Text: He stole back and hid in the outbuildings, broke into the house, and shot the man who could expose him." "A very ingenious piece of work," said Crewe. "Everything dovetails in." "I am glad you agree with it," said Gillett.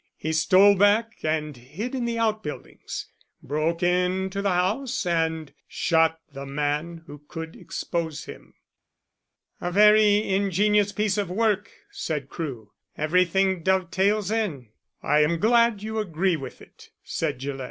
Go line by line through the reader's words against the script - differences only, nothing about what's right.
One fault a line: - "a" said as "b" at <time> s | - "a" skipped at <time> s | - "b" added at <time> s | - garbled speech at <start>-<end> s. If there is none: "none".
none